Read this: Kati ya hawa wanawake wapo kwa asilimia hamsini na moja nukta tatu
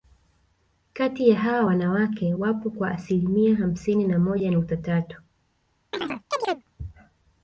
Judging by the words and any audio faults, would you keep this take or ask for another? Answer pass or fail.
fail